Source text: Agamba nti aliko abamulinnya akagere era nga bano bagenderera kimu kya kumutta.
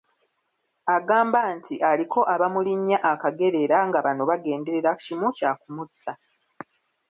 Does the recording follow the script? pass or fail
pass